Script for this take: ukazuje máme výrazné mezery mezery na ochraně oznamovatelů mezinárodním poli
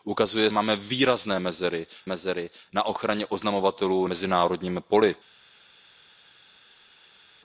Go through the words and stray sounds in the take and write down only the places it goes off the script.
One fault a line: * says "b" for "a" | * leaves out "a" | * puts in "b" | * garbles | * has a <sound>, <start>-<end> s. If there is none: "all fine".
all fine